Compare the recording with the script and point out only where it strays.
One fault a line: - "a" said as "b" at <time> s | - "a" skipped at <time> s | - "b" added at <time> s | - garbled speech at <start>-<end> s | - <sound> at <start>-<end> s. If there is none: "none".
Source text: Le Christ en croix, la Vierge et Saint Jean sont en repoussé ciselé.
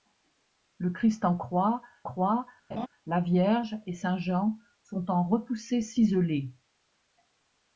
- "croix" added at 2.0 s
- laugh at 2.7-2.9 s